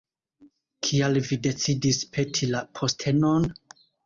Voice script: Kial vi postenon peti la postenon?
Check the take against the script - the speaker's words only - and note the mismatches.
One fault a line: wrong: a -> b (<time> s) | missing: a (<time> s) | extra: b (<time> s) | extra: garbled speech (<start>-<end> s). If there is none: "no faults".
wrong: postenon -> decidis (1.5 s)